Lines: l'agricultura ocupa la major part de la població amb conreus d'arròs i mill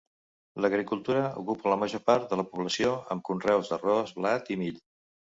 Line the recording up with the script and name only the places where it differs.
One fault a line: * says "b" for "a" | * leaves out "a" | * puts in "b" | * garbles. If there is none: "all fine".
* puts in "blat"